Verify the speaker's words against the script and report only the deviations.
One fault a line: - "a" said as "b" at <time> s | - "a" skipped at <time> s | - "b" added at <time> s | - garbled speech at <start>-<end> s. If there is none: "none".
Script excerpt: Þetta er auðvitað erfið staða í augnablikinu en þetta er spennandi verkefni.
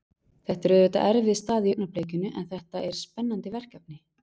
none